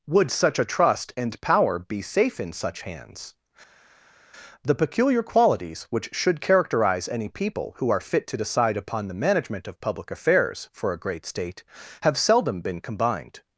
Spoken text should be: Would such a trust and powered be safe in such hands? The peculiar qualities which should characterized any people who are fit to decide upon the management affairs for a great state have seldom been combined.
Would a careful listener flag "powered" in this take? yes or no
yes